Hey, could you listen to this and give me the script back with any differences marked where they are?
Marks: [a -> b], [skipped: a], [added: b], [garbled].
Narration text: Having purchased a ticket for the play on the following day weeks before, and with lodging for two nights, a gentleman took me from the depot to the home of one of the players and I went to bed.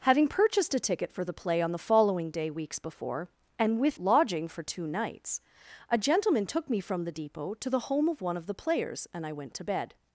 Having purchased a ticket for the play on the following day weeks before, and with lodging for two nights, a gentleman took me from the depot to the home of one of the players and I went to bed.